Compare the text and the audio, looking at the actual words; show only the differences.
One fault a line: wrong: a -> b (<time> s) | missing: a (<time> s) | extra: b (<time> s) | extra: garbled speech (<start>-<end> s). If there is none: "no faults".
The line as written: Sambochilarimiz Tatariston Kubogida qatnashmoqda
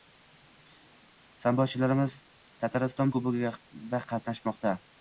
no faults